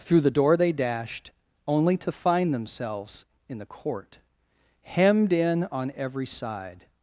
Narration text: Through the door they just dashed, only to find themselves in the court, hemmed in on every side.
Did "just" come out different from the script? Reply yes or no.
yes